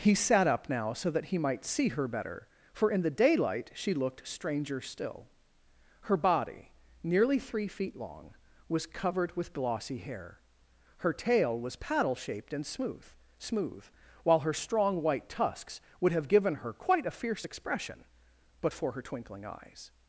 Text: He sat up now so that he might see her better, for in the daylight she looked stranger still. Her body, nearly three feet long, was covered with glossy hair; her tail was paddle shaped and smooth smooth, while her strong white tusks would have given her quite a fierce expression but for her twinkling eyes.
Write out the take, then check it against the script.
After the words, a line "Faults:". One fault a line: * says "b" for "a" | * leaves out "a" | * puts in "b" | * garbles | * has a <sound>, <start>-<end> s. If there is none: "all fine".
He sat up now so that he might see her better, for in the daylight she looked stranger still. Her body, nearly three feet long, was covered with glossy hair; her tail was paddle shaped and smooth smooth, while her strong white tusks would have given her quite a fierce expression but for her twinkling eyes.
Faults:
all fine